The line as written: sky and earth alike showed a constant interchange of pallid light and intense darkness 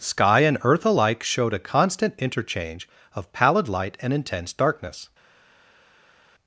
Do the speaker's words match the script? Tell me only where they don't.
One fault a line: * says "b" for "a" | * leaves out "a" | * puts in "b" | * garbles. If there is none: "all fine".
all fine